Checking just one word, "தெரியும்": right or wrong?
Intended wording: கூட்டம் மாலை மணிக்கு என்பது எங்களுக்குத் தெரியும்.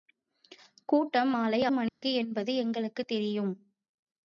right